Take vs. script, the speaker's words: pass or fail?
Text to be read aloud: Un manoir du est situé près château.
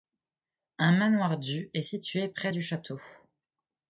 fail